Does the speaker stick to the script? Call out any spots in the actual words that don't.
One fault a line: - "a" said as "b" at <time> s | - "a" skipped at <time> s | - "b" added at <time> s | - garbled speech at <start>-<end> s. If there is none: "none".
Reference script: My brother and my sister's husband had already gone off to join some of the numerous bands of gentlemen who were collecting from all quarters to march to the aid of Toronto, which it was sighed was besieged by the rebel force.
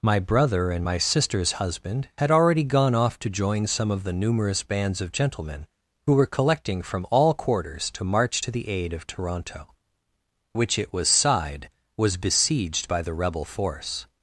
none